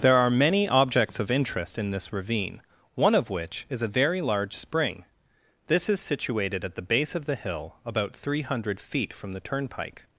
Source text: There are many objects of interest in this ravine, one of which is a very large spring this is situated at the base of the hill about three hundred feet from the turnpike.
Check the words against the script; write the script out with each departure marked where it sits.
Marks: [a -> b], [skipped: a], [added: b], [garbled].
There are many objects of interest in this ravine, one of which is a very large spring this is situated at the base of the hill about three hundred feet from the turnpike.